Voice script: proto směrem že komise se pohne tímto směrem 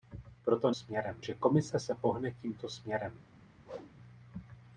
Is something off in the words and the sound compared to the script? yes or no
yes